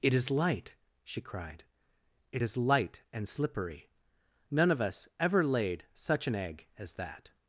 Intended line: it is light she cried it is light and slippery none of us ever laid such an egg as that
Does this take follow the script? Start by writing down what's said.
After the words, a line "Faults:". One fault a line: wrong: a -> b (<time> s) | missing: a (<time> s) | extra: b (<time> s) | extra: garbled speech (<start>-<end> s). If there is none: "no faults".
it is light she cried it is light and slippery none of us ever laid such an egg as that
Faults:
no faults